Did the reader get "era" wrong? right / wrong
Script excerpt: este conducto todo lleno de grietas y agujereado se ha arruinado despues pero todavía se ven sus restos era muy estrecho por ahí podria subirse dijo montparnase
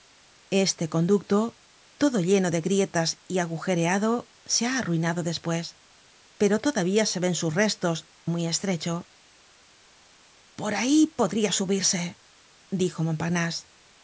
wrong